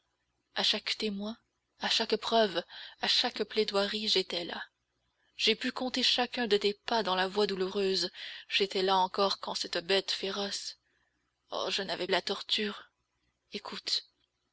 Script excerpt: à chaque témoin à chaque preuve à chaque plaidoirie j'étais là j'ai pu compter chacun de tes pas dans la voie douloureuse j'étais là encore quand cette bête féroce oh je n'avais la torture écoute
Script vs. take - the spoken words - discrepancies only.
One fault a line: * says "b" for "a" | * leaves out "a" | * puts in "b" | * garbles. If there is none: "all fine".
all fine